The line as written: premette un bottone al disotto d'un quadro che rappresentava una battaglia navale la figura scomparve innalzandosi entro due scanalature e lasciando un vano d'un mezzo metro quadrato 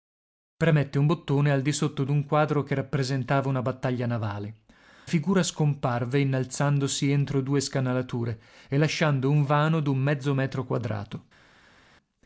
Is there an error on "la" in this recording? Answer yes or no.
yes